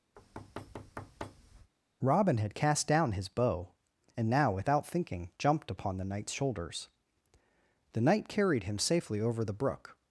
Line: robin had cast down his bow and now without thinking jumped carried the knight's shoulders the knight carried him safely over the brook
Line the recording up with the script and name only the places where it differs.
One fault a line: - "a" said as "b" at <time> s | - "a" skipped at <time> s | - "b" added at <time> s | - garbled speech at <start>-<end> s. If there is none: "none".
- "carried" said as "upon" at 5.7 s